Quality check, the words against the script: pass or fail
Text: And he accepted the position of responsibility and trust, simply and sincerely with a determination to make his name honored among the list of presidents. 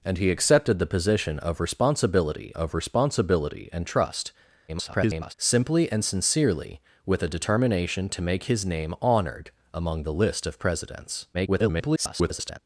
fail